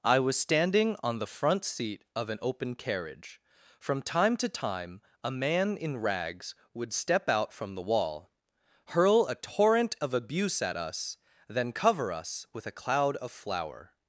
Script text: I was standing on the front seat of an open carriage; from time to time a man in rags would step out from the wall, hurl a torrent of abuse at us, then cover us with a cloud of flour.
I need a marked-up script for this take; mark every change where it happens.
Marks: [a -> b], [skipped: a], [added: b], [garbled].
I was standing on the front seat of an open carriage; from time to time a man in rags would step out from the wall, hurl a torrent of abuse at us, then cover us with a cloud of flour.